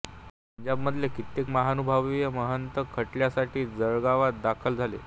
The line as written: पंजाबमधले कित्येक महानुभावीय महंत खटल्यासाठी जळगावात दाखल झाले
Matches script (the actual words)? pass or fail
pass